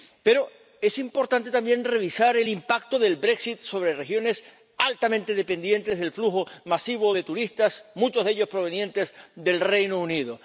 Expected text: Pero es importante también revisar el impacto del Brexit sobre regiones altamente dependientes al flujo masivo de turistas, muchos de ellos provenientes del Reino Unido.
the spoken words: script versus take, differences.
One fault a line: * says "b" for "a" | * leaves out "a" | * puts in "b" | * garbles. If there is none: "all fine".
* says "del" for "al"